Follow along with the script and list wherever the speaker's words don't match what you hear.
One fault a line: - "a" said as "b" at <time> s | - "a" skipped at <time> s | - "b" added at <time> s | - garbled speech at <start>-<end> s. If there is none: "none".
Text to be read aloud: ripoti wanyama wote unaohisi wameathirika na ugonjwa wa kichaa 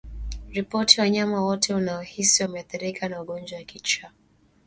none